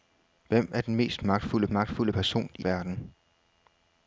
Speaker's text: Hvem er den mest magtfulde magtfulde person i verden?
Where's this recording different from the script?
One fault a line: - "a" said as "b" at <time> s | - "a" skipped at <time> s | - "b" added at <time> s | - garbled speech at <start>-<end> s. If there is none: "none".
none